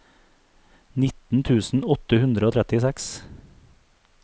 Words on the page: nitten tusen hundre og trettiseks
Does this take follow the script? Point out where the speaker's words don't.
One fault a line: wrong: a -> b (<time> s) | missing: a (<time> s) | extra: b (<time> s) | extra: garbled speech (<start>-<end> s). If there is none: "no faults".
extra: åtte (2.0 s)